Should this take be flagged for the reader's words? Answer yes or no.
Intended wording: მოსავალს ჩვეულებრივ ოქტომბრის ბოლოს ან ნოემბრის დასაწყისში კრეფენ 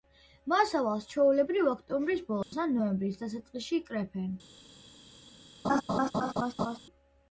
no